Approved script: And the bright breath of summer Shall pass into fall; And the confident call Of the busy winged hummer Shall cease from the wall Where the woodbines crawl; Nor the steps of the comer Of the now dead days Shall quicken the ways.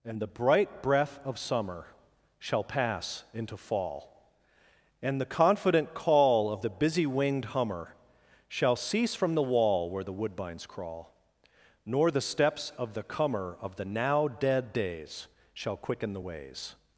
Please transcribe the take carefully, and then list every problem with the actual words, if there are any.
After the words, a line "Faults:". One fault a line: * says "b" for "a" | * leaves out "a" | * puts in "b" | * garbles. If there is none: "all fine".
And the bright breath of summer Shall pass into fall; And the confident call Of the busy winged hummer Shall cease from the wall Where the woodbines crawl; Nor the steps of the comer Of the now dead days Shall quicken the ways.
Faults:
all fine